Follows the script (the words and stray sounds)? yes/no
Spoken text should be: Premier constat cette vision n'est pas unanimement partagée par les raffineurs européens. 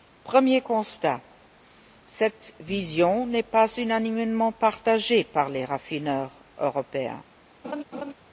no